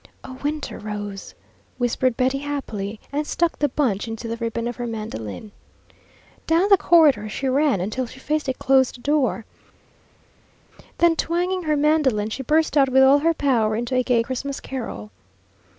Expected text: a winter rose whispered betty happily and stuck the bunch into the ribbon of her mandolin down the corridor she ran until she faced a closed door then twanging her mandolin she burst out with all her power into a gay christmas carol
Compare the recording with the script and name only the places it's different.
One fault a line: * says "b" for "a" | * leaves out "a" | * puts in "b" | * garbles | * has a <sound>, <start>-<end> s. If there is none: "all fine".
all fine